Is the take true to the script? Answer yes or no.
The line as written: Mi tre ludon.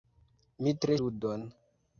yes